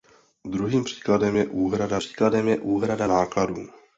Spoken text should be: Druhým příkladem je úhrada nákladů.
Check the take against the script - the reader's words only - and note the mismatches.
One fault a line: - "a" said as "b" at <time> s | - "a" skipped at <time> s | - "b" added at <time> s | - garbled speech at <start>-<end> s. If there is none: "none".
- "příkladem je úhrada" added at 2.0 s